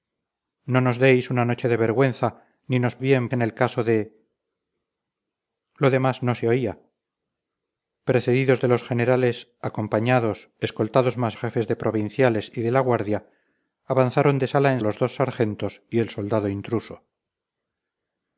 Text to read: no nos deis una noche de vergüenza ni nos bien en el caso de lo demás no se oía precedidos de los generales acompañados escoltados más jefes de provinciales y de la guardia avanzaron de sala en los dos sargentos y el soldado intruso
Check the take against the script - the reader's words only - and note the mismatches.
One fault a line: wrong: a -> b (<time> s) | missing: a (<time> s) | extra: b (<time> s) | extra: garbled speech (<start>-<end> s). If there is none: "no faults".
no faults